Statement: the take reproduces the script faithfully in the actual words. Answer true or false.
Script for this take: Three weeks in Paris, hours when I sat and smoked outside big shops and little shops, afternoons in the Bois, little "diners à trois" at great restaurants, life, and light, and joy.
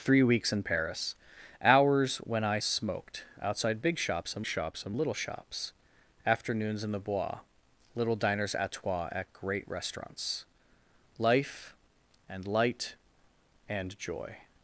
false